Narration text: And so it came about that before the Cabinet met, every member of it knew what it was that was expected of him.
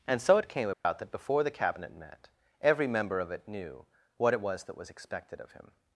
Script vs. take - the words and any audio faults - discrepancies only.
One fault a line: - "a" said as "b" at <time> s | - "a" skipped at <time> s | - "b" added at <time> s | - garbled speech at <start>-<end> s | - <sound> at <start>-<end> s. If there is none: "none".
- dropout at 0.7-0.8 s